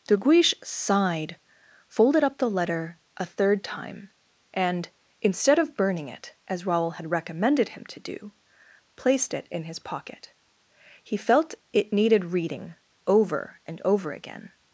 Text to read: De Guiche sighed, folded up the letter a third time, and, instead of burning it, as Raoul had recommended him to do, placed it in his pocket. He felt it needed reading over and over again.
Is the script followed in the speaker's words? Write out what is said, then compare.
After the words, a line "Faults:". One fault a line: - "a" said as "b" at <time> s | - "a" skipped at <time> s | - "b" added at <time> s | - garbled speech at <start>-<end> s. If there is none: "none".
De Guiche sighed, folded up the letter a third time, and, instead of burning it, as Raoul had recommended him to do, placed it in his pocket. He felt it needed reading over and over again.
Faults:
none